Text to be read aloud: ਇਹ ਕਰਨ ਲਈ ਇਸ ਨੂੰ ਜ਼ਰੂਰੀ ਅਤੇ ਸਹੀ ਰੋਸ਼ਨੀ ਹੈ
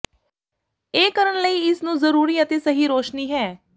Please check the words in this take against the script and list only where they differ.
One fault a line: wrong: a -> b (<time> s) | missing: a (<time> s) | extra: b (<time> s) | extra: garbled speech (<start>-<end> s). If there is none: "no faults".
no faults